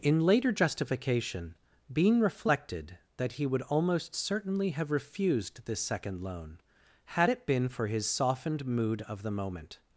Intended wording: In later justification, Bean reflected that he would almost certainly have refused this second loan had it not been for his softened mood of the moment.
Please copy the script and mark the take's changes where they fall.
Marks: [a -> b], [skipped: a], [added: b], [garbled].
In later justification, Bean reflected that he would almost certainly have refused this second loan had it [skipped: not] been for his softened mood of the moment.